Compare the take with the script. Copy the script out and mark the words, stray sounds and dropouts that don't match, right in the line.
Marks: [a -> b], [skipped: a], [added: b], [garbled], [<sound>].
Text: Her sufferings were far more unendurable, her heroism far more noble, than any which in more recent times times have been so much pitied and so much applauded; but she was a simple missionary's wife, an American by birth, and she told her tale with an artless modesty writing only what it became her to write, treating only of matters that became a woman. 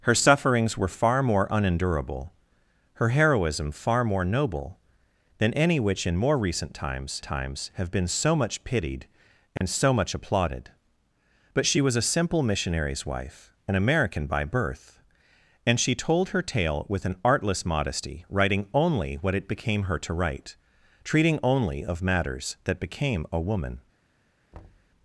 Her sufferings were far more unendurable, her heroism far more noble, than any which in more recent times times have been so much pitied and [dropout] so much applauded; but she was a simple missionary's wife, an American by birth, and she told her tale with an artless modesty writing only what it became her to write, treating only of matters that became a woman. [thud]